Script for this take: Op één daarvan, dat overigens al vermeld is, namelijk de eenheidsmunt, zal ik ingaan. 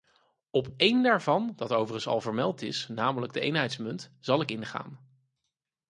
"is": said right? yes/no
yes